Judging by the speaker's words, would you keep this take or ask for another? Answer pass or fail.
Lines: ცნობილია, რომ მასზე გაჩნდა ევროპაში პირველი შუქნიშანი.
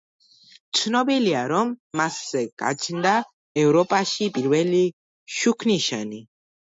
pass